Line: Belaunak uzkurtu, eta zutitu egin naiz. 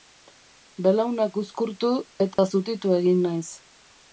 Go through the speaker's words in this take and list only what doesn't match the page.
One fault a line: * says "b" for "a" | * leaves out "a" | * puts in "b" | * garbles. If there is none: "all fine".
all fine